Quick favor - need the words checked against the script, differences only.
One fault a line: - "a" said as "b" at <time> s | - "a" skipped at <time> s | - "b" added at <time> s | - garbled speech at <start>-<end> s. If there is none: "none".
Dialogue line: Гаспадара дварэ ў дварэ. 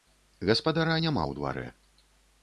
- "дварэ" said as "няма" at 1.0 s